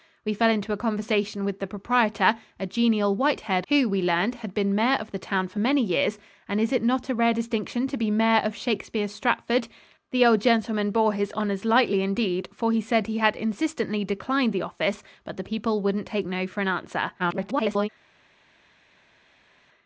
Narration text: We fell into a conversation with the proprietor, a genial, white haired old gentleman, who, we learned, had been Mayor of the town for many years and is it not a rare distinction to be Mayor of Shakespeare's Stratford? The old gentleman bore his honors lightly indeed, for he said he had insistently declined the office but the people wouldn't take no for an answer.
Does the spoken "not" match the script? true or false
true